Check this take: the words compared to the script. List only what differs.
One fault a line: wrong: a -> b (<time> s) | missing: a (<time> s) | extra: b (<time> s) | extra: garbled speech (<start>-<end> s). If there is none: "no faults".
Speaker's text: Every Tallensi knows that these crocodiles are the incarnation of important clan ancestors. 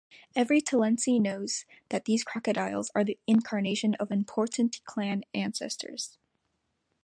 no faults